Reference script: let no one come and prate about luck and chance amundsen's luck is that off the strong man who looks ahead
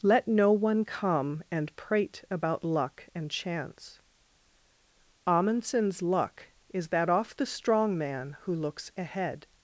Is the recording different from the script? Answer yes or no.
no